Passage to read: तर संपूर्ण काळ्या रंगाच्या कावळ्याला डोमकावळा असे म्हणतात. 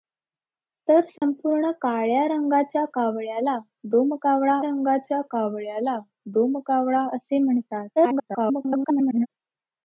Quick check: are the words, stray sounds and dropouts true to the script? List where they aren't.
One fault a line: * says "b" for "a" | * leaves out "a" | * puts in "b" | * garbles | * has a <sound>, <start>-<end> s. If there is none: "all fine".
* has a dropout, 1.2-1.2 s
* puts in "रंगाच्या कावळ्याला डोमकावळा"
* garbles